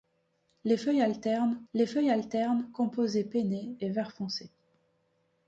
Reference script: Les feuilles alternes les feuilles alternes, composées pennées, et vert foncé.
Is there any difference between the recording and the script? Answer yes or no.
no